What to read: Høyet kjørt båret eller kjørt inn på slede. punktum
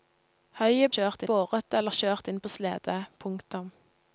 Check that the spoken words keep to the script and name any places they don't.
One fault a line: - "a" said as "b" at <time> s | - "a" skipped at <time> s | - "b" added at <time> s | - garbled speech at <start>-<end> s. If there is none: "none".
none